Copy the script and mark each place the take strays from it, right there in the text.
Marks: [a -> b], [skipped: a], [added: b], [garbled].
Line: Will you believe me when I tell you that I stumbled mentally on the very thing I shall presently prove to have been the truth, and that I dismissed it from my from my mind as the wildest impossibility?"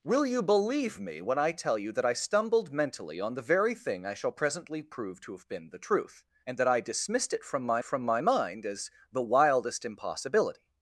Will you believe me when I tell you that I stumbled mentally on the very thing I shall presently prove to have been the truth, and that I dismissed it from my from my mind as the wildest impossibility?"